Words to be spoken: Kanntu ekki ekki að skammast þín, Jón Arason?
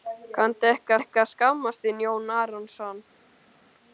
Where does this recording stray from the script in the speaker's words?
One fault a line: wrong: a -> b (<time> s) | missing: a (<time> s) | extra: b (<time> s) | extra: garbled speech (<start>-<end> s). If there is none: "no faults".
no faults